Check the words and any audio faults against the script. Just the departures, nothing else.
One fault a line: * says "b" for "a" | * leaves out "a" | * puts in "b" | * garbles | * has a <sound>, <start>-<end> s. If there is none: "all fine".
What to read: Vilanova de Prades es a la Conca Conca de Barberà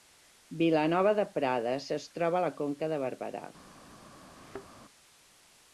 * puts in "troba"
* leaves out "Conca"
* has a thud, 4.3-4.7 s